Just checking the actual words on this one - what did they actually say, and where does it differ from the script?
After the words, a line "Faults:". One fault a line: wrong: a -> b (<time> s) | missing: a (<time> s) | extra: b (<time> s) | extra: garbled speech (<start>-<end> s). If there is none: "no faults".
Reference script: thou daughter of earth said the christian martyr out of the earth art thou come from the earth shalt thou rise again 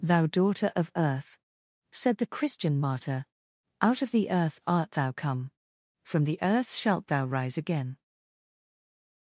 thou daughter of earth said the christian martyr out of the earth art thou come from the earth shalt thou rise again
Faults:
no faults